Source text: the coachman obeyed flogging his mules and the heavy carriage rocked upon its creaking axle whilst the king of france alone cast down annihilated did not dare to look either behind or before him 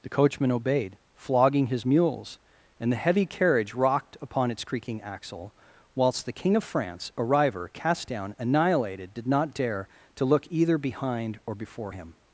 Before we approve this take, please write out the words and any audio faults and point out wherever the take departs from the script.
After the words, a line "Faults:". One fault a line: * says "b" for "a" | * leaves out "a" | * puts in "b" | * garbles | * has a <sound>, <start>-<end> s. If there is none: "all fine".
the coachman obeyed flogging his mules and the heavy carriage rocked upon its creaking axle whilst the king of france a river cast down annihilated did not dare to look either behind or before him
Faults:
* says "a river" for "alone"